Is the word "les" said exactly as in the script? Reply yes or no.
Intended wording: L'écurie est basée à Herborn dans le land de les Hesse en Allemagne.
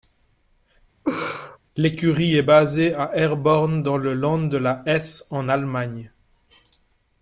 no